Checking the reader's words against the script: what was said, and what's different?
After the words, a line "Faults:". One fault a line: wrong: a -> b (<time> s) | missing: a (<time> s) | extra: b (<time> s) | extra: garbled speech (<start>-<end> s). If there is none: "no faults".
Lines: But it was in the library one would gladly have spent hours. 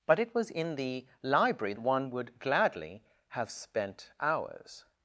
But it was in the library one would gladly have spent hours.
Faults:
no faults